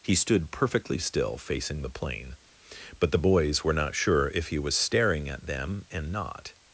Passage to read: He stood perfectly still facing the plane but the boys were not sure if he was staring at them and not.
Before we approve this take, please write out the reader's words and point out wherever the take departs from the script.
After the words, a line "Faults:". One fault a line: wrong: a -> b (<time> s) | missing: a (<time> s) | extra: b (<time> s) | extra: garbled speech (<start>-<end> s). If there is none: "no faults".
He stood perfectly still facing the plane but the boys were not sure if he was staring at them and not.
Faults:
no faults